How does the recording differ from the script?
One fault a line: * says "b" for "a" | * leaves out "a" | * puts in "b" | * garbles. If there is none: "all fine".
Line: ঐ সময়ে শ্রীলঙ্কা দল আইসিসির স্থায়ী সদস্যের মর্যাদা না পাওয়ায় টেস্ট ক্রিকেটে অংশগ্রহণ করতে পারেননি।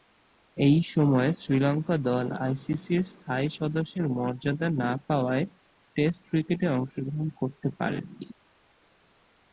all fine